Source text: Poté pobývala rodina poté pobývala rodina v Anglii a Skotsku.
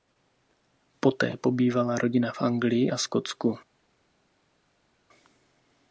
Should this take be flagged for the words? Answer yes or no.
yes